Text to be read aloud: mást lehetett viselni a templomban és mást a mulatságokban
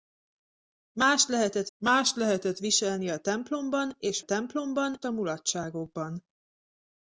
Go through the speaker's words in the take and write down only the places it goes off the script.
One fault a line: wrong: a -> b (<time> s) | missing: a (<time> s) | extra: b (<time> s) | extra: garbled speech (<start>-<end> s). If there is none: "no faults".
extra: mást lehetett (1.8 s)
wrong: mást -> templomban (4.2 s)